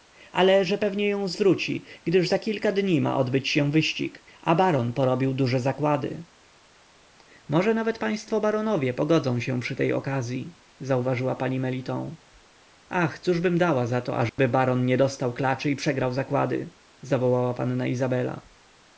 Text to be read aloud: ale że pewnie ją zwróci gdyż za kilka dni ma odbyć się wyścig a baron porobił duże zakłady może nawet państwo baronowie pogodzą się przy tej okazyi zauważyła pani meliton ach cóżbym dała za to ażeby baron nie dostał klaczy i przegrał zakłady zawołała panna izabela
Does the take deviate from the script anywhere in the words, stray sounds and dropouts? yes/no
yes